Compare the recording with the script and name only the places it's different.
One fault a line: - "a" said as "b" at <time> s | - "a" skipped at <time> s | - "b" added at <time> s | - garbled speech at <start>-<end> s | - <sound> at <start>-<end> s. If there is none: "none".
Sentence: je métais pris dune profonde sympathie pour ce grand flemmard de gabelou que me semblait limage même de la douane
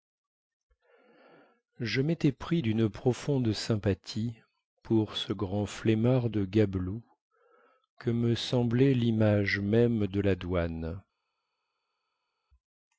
none